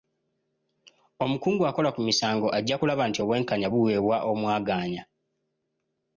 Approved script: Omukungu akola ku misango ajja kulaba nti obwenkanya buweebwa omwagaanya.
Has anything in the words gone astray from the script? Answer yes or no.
no